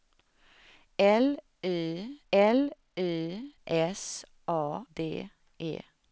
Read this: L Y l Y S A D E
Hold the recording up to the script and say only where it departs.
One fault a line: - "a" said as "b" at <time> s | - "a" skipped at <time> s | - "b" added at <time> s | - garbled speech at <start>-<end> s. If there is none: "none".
none